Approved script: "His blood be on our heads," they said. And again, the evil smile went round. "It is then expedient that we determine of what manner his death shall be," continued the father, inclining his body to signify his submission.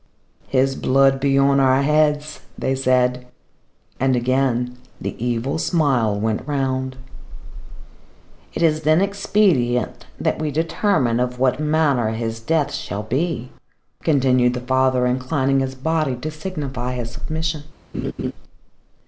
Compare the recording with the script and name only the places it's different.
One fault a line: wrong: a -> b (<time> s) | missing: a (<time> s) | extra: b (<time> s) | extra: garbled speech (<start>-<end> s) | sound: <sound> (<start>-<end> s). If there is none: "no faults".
sound: laugh (17.9-18.3 s)